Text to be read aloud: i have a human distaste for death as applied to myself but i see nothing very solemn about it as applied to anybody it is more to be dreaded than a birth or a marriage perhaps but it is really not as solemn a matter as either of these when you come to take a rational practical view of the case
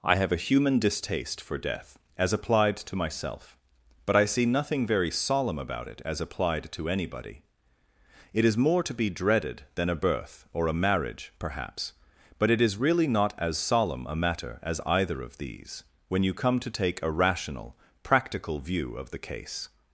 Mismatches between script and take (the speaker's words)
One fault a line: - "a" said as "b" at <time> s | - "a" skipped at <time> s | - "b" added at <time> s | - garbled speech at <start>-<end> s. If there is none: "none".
none